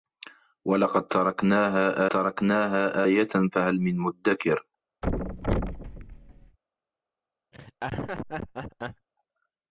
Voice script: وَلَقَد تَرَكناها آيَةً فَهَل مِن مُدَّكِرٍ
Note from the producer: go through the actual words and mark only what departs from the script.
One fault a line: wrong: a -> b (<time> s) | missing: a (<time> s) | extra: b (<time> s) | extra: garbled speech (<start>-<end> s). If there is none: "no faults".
extra: تَرَكناها (2.1 s)